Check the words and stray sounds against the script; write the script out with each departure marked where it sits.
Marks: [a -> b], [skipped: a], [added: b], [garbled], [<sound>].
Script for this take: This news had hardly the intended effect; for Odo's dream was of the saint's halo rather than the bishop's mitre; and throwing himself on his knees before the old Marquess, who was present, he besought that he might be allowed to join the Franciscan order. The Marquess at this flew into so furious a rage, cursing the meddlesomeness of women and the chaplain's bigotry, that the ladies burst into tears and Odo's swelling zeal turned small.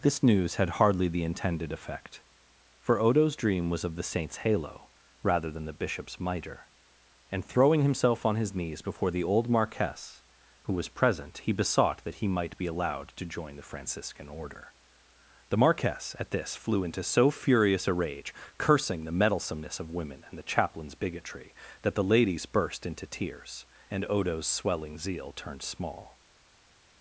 This news had hardly the intended effect; for Odo's dream was of the saint's halo rather than the bishop's mitre; and throwing himself on his knees before the old Marquess, who was present, he besought that he might be allowed to join the Franciscan order. The Marquess at this flew into so furious a rage, cursing the meddlesomeness of women and the chaplain's bigotry, that the ladies burst into tears and Odo's swelling zeal turned small.